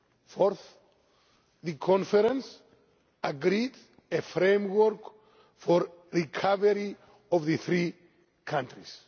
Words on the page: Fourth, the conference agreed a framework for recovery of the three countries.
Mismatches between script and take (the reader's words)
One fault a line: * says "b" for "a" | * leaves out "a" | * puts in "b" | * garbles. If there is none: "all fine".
all fine